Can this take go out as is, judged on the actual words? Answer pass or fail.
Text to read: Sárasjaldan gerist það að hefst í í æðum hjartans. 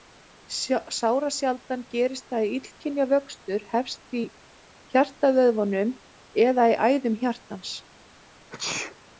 fail